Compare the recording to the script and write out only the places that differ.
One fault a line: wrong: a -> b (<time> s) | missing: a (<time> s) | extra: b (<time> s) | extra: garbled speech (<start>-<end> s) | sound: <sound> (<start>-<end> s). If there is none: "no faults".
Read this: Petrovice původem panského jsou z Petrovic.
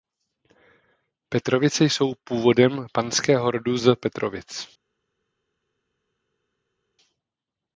extra: jsou (1.8 s)
wrong: jsou -> rodu (3.5 s)